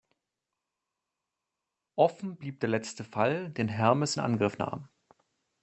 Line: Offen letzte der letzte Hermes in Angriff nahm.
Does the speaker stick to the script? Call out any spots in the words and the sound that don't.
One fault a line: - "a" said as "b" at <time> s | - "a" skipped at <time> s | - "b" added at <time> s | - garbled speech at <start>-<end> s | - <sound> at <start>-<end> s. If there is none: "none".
- "letzte" said as "blieb" at 2.4 s
- "Fall den" added at 3.1 s